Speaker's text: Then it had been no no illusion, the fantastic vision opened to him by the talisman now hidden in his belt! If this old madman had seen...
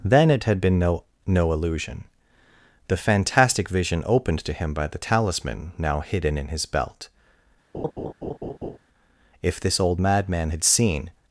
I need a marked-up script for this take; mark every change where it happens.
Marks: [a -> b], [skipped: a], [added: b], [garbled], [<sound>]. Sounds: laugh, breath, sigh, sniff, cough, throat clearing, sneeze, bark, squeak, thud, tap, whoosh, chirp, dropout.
Then it had been no no illusion, the fantastic vision opened to him by the talisman now hidden in his belt! [laugh] If this old madman had seen...